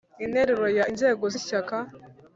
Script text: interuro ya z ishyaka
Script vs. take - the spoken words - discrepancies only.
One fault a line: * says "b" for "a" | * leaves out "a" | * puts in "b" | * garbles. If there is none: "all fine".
* puts in "inzego"